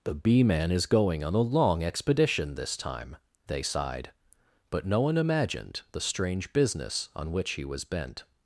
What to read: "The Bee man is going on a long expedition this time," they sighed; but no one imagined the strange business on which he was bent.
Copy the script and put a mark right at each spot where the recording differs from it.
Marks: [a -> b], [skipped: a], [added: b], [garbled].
"The Bee man is going on a long expedition this time," they sighed; but no one imagined the strange business on which he was bent.